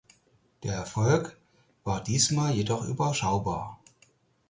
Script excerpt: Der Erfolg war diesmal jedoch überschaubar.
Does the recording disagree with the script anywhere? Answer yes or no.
no